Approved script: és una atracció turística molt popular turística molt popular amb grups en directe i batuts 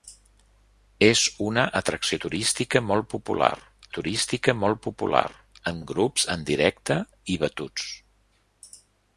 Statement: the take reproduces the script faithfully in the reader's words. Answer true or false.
true